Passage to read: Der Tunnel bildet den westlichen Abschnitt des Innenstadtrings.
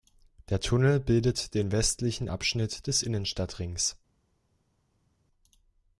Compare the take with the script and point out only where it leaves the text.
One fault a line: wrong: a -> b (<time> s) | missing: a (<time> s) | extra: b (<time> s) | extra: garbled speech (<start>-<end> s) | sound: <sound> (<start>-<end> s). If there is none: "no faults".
no faults